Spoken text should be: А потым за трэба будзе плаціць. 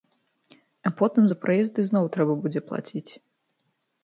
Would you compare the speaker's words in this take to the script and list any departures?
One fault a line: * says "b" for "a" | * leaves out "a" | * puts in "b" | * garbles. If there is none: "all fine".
* puts in "праезд ізноў"